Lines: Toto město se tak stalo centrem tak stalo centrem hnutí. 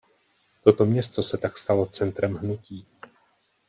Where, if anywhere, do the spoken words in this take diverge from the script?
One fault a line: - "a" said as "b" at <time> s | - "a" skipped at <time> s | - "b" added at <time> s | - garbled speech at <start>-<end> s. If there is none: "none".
- "tak stalo centrem" skipped at 2.4 s